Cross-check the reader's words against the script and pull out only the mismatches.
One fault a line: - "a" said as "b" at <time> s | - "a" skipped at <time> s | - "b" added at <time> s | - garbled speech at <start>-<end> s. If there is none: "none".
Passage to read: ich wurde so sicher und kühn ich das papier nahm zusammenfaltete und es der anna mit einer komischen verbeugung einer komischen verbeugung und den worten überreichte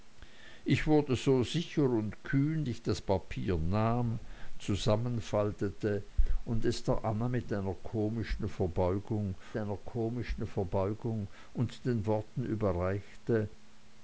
none